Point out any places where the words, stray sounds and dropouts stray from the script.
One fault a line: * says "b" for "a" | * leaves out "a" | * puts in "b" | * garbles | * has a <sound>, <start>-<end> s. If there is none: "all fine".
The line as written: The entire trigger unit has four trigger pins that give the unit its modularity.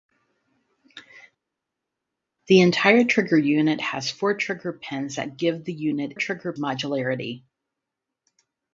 * says "trigger" for "its"